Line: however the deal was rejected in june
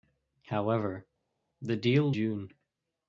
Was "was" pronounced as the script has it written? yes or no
no